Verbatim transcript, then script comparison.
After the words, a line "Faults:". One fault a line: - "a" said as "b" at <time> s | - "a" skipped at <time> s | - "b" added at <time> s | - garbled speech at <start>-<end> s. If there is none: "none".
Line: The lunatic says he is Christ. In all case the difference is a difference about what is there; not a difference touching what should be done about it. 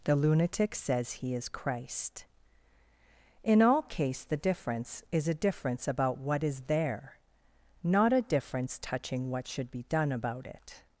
The lunatic says he is Christ. In all case the difference is a difference about what is there; not a difference touching what should be done about it.
Faults:
none